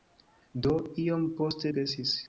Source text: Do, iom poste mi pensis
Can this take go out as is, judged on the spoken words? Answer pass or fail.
fail